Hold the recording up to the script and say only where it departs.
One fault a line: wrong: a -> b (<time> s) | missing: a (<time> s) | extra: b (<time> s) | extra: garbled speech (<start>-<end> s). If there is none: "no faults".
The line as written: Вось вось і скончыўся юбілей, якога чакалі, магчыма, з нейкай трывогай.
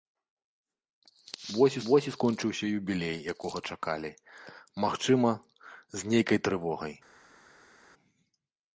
no faults